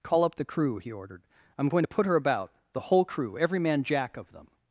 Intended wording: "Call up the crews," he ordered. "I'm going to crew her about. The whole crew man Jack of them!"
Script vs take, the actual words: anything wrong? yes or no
yes